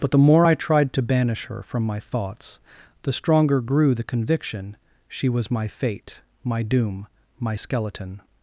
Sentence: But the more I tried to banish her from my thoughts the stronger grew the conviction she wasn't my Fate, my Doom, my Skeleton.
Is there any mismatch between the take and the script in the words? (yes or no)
yes